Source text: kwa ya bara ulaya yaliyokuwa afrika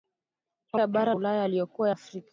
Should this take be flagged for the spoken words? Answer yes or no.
no